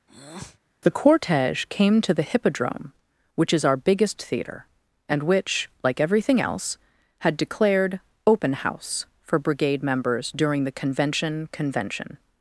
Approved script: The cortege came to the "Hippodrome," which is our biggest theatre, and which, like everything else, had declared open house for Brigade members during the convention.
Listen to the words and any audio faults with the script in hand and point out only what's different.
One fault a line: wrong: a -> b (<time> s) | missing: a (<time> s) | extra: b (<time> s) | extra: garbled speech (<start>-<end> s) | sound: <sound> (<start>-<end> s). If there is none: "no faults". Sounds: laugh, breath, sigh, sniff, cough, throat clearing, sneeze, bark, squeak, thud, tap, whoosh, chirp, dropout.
sound: breath (0.1-0.6 s)
extra: convention (11.5 s)